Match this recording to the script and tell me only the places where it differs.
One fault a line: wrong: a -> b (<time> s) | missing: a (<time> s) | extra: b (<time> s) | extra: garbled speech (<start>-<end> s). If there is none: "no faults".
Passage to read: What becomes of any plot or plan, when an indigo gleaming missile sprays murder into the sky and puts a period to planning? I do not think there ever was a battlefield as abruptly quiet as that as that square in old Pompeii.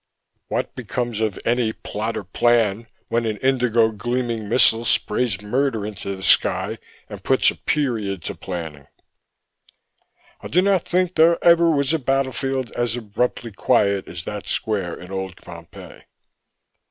missing: as that (14.5 s)